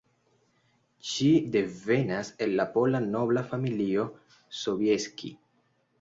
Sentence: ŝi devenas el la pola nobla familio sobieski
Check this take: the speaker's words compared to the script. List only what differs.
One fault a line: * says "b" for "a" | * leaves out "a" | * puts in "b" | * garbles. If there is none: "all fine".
all fine